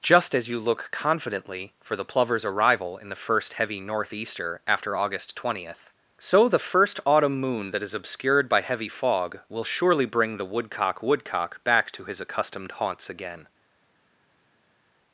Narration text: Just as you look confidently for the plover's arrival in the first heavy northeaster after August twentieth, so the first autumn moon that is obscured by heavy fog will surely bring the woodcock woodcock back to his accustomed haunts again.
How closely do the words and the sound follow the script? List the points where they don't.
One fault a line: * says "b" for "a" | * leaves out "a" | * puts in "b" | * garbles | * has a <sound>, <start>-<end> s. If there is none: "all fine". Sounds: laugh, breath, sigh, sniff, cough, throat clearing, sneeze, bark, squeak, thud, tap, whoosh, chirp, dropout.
all fine